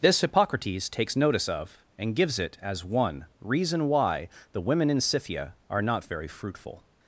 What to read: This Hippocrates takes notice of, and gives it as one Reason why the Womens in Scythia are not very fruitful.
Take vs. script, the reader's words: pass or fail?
fail